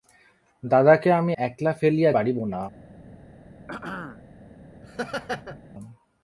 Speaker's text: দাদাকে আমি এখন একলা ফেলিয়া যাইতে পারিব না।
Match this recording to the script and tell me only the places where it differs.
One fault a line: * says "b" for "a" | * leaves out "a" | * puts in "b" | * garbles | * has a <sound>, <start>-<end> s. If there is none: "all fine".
* leaves out "এখন"
* leaves out "যাইতে"
* has a throat clearing, 3.7-4.2 s
* has a laugh, 4.8-5.6 s